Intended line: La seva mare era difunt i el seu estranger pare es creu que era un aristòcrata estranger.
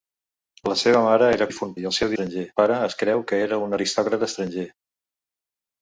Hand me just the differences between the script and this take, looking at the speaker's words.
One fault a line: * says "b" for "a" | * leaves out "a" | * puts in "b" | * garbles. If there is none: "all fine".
all fine